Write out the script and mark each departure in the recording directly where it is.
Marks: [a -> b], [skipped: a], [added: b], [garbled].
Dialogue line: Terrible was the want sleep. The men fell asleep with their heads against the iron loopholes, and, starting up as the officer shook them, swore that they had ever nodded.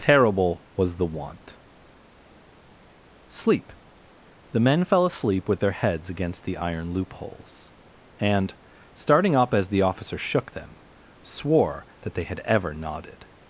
Terrible was the want sleep. The men fell asleep with their heads against the iron loopholes, and, starting up as the officer shook them, swore that they had ever nodded.